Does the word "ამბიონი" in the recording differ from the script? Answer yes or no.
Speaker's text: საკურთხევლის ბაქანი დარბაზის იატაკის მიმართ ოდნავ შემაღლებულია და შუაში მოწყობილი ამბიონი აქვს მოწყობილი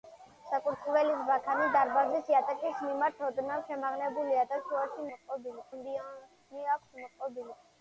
no